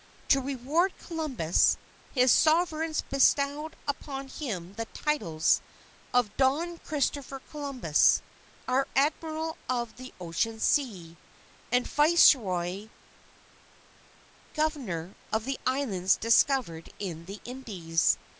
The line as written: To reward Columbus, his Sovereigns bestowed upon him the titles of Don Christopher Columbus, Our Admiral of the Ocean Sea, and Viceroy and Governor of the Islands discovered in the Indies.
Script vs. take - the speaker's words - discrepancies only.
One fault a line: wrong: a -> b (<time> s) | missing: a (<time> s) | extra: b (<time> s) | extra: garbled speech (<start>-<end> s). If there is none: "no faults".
missing: and (12.9 s)